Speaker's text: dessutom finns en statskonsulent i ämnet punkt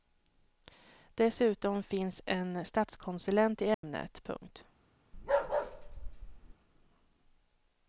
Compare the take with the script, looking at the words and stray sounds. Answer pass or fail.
fail